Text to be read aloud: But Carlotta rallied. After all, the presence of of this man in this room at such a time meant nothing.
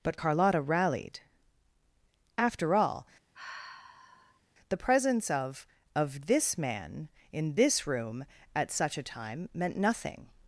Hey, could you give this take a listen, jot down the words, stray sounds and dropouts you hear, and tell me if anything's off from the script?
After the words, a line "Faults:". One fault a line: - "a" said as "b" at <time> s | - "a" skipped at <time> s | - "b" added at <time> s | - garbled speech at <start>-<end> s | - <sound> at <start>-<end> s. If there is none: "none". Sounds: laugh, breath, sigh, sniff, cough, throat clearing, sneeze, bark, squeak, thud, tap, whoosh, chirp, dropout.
But Carlotta rallied. After all, the presence of of this man in this room at such a time meant nothing.
Faults:
- sigh at 3.3-4.4 s